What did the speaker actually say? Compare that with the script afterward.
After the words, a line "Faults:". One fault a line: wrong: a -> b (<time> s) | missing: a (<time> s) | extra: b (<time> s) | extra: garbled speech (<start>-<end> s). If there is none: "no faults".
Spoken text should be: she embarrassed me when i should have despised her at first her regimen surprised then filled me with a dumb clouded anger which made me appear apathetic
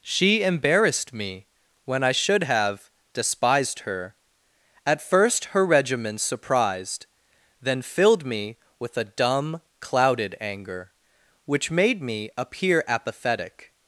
she embarrassed me when i should have despised her at first her regimen surprised then filled me with a dumb clouded anger which made me appear apathetic
Faults:
no faults